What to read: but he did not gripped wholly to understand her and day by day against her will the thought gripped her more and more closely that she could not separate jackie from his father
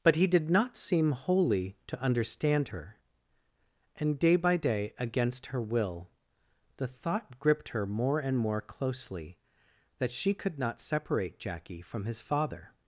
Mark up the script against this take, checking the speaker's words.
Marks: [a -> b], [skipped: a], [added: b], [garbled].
but he did not [gripped -> seem] wholly to understand her and day by day against her will the thought gripped her more and more closely that she could not separate jackie from his father